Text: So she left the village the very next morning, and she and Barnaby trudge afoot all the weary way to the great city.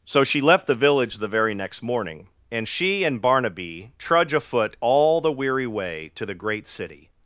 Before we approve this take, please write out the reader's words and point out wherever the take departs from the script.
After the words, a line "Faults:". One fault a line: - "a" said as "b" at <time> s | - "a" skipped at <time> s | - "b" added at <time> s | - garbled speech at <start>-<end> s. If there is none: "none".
So she left the village the very next morning, and she and Barnaby trudge afoot all the weary way to the great city.
Faults:
none